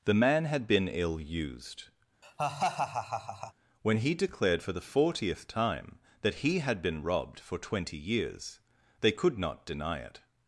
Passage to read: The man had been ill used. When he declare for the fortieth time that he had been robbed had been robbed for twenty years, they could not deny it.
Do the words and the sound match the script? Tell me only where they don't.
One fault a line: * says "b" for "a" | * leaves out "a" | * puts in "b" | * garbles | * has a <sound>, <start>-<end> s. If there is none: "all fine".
* has a laugh, 2.2-3.5 s
* says "declared" for "declare"
* leaves out "had been robbed"